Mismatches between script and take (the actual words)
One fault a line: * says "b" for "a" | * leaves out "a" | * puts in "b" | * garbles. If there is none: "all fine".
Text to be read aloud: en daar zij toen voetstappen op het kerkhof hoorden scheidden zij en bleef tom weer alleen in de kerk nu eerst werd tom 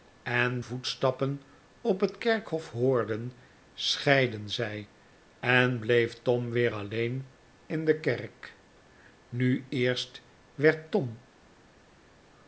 * leaves out "daar zij toen"